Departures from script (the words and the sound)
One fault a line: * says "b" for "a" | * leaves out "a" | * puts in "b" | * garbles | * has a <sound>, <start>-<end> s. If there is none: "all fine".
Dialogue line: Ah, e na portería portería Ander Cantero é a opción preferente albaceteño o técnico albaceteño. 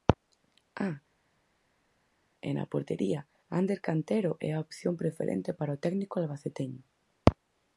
* leaves out "portería"
* says "para" for "albaceteño"